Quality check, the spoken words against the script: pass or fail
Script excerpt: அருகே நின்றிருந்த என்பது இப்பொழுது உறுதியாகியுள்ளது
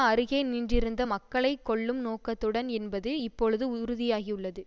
fail